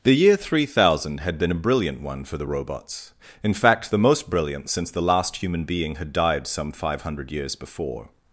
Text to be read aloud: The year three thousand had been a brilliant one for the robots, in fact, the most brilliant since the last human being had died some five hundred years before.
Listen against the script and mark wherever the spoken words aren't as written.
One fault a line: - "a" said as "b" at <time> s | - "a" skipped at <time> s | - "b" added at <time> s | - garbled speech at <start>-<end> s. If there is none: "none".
none